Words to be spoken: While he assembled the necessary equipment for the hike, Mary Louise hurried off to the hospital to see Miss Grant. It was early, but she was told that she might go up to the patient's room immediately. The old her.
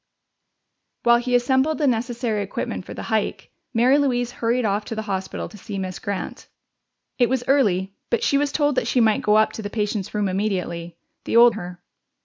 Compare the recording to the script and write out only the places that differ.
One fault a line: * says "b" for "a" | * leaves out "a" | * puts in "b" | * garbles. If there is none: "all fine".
all fine